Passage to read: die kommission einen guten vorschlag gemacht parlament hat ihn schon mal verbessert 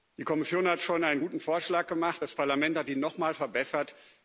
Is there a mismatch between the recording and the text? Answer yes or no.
yes